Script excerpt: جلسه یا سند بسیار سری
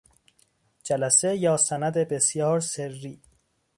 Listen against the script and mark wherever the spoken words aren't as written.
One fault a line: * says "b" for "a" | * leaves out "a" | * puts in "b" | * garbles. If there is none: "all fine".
all fine